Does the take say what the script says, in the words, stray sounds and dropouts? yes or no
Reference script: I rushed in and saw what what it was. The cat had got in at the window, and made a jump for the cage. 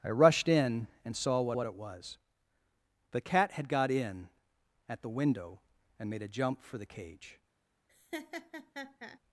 no